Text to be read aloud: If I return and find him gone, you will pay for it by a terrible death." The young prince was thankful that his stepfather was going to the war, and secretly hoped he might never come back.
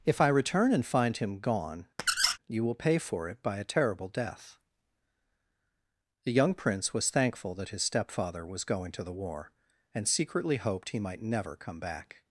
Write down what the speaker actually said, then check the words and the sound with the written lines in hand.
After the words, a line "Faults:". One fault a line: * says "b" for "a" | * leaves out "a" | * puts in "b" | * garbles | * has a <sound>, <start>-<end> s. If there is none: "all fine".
If I return and find him gone, you will pay for it by a terrible death." The young prince was thankful that his stepfather was going to the war, and secretly hoped he might never come back.
Faults:
* has a squeak, 2.0-2.4 s